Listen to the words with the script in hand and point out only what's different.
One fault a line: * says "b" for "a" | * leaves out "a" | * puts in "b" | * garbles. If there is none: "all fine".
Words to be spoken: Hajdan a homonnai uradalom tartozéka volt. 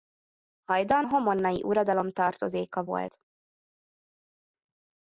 * leaves out "a"